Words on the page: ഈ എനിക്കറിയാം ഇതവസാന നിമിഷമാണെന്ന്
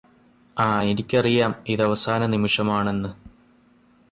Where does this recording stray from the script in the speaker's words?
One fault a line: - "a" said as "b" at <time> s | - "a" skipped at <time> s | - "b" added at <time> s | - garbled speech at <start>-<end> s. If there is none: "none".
- "ഈ" said as "ആ" at 0.6 s